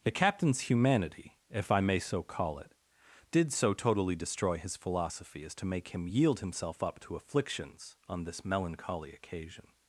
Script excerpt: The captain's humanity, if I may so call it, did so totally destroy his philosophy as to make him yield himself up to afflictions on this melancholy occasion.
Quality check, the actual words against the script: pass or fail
pass